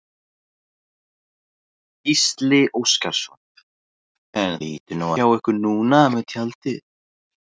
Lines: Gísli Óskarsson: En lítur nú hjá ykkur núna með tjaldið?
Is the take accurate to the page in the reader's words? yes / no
yes